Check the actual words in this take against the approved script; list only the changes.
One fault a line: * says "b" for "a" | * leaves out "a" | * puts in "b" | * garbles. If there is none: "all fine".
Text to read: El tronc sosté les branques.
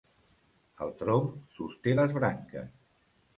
all fine